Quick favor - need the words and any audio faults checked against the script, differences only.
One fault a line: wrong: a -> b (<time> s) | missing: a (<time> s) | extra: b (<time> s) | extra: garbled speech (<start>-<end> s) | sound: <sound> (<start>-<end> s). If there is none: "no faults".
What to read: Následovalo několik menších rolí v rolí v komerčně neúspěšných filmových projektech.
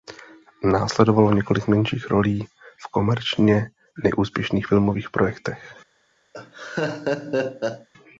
missing: rolí v (2.9 s)
sound: laugh (6.3-7.9 s)